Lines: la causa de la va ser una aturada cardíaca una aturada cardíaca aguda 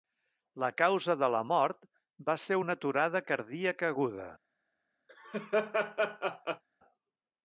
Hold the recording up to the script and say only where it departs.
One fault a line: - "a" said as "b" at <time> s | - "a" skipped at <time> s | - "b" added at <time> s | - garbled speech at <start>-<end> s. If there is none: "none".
- "mort" added at 1.5 s
- "una aturada cardíaca" skipped at 3.9 s